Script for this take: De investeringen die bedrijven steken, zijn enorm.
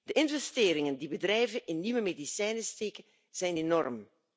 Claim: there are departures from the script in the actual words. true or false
true